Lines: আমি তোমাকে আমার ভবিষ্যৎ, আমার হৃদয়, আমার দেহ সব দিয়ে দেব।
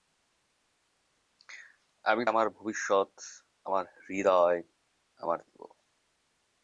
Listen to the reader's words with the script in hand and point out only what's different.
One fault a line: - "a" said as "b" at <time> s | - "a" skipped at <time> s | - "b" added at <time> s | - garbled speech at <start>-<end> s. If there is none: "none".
- "তোমাকে" skipped at 2.2 s
- "দেহ সব দিয়ে" skipped at 5.4 s